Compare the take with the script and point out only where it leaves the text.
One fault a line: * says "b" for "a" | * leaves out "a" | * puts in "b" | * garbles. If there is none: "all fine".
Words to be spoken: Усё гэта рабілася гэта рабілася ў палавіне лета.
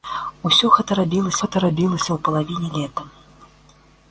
all fine